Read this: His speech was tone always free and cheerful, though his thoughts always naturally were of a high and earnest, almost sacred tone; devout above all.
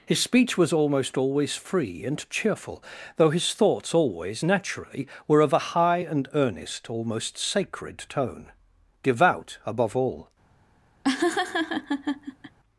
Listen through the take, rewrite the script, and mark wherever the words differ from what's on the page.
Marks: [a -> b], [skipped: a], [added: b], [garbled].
His speech was [tone -> almost] always free and cheerful, though his thoughts always naturally were of a high and earnest, almost sacred tone; devout above all.